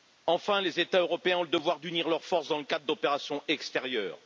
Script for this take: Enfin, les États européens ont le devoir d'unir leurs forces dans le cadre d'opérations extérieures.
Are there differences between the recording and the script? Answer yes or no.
no